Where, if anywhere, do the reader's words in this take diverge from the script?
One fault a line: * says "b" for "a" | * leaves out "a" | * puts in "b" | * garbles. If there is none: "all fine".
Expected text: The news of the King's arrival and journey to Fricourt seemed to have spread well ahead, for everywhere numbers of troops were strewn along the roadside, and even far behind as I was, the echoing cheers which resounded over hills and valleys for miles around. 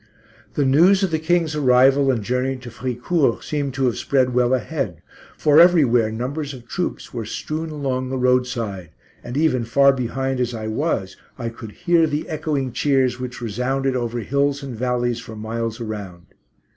* puts in "I could hear"